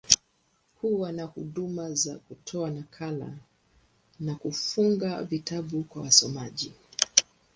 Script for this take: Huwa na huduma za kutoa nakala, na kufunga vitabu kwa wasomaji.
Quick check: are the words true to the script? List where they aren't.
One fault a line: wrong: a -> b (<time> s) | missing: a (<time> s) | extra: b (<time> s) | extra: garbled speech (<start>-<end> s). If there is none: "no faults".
no faults